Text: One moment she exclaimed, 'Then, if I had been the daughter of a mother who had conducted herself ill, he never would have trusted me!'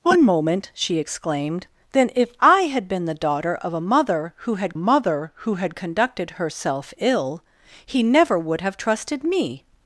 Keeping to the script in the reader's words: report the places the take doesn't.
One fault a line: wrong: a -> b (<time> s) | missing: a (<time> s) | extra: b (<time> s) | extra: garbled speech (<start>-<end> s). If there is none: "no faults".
extra: mother who had (4.8 s)